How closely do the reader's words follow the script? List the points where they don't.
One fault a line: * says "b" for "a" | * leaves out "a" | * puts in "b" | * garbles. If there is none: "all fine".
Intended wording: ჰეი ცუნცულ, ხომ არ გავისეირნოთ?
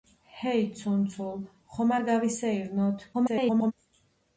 * garbles